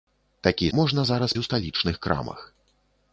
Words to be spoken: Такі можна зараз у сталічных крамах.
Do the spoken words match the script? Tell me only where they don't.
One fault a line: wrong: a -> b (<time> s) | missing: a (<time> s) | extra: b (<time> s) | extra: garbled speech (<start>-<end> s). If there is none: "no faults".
no faults